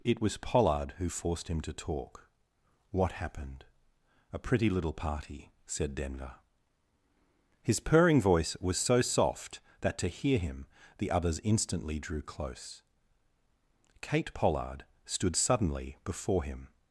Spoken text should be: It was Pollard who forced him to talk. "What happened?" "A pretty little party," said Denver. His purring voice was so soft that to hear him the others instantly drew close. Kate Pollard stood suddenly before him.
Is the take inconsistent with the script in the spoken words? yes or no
no